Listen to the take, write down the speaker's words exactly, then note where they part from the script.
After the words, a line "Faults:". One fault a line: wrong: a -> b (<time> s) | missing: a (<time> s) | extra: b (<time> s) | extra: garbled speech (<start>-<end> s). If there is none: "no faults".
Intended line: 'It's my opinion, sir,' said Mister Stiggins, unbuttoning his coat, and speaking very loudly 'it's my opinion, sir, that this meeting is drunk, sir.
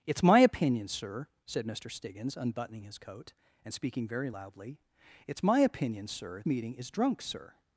'It's my opinion, sir,' said Mister Stiggins, unbuttoning his coat, and speaking very loudly 'it's my opinion, sir, meeting is drunk, sir.
Faults:
missing: that this (6.4 s)